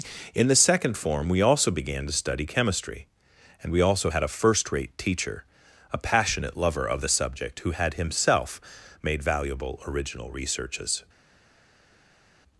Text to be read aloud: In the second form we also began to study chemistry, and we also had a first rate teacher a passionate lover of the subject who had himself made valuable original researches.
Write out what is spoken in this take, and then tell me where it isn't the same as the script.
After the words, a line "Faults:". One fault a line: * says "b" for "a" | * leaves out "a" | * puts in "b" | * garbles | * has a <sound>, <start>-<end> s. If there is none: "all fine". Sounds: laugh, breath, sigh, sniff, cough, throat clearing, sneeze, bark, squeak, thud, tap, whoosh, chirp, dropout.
In the second form we also began to study chemistry, and we also had a first rate teacher a passionate lover of the subject who had himself made valuable original researches.
Faults:
all fine